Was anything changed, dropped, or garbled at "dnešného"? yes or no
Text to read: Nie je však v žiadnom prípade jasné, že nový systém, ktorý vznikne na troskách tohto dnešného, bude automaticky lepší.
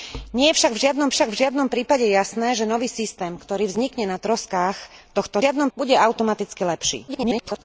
yes